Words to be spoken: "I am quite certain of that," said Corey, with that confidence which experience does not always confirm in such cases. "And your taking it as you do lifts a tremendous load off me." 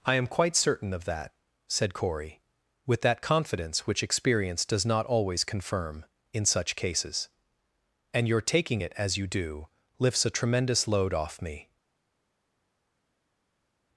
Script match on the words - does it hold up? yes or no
yes